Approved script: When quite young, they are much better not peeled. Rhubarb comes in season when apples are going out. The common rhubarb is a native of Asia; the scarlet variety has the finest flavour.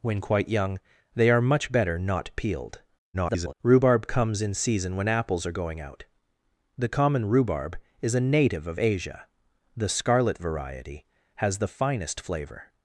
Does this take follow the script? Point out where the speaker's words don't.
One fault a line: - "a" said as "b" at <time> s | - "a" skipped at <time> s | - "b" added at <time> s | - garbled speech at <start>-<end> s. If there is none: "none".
- garbled speech at 3.1-3.5 s